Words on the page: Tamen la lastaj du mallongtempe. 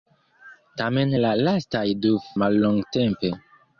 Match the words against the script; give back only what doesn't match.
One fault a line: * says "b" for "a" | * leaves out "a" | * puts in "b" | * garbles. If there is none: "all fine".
all fine